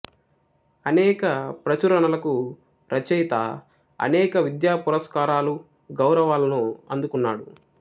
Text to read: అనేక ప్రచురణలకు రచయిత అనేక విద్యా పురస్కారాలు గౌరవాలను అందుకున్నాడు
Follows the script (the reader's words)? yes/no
yes